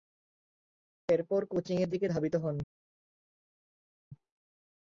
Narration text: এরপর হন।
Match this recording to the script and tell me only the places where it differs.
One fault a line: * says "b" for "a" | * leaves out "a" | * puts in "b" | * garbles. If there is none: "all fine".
* puts in "কোচিংয়ের দিকে ধাবিত"